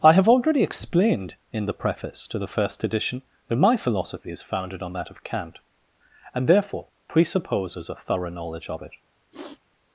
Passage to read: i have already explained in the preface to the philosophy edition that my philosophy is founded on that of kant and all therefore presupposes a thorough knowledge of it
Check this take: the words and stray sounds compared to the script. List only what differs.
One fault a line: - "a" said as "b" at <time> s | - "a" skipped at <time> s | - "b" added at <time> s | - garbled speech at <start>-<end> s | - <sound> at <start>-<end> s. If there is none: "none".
- "philosophy" said as "first" at 2.5 s
- "all" skipped at 6.5 s
- sniff at 9.3-9.6 s